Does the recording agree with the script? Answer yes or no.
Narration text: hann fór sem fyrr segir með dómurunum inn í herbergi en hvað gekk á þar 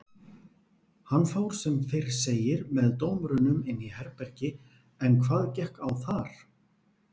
yes